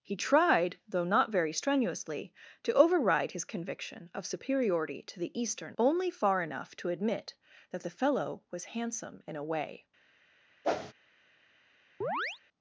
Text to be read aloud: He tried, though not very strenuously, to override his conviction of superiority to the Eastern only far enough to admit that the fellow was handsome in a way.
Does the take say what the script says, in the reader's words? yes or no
yes